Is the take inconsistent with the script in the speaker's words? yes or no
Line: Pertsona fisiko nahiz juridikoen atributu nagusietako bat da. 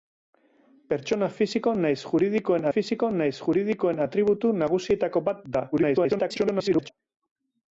yes